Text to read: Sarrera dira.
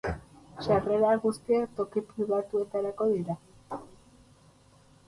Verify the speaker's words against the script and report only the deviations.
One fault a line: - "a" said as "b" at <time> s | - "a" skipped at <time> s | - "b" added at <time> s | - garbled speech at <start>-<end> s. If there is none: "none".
- "guztiak toki pribatuetarako" added at 1.2 s